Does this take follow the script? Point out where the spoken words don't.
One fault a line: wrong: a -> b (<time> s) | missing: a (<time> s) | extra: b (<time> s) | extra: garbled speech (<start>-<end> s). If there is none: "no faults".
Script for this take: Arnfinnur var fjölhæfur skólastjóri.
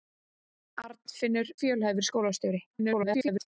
missing: var (1.5 s)
extra: garbled speech (2.7-3.5 s)